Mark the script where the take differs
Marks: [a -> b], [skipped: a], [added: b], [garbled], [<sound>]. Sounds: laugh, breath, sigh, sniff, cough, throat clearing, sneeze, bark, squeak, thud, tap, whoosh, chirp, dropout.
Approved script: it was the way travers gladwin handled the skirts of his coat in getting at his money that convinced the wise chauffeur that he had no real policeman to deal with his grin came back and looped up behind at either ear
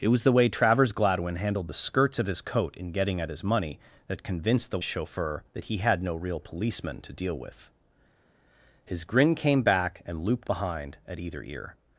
it was the way travers gladwin handled the skirts of his coat in getting at his money that convinced the [skipped: wise] chauffeur that he had no real policeman to deal with his grin came back and looped [skipped: up] behind at either ear